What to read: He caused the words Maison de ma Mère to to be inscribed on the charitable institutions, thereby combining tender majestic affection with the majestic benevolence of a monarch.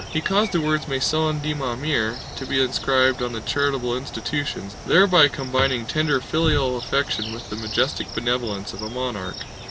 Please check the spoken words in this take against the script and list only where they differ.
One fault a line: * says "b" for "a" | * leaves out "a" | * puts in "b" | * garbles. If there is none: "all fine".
* leaves out "to"
* says "filial" for "majestic"